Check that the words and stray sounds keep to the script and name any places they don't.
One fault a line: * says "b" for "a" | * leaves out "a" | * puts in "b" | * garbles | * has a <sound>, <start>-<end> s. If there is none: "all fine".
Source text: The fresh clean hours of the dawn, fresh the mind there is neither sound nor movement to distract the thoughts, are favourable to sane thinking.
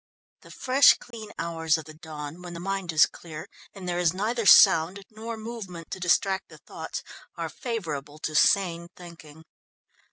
* has a dropout, 1.1-1.1 s
* says "when" for "fresh"
* puts in "is clear and"